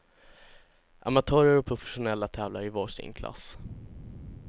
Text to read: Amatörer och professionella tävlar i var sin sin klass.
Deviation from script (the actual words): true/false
true